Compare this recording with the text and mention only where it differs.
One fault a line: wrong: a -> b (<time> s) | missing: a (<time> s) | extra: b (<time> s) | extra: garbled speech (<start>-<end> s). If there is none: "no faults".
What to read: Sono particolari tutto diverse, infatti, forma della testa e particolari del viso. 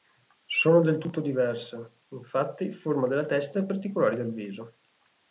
wrong: particolari -> del (0.8 s)